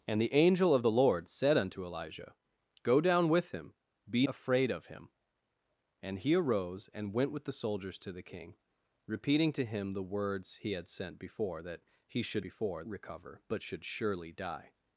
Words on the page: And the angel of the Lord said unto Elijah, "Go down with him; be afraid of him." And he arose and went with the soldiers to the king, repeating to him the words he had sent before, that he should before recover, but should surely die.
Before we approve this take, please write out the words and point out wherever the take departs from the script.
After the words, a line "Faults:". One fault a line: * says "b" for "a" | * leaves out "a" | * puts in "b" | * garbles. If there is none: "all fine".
And the angel of the Lord said unto Elijah, "Go down with him; be afraid of him." And he arose and went with the soldiers to the king, repeating to him the words he had sent before, that he should before recover, but should surely die.
Faults:
all fine